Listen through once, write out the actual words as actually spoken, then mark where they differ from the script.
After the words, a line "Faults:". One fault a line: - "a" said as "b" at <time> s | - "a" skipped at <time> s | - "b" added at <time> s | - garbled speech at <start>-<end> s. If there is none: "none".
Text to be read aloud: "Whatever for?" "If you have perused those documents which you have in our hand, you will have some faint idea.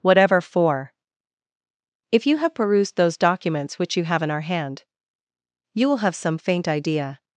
"Whatever for?" "If you have perused those documents which you have in our hand, you will have some faint idea.
Faults:
none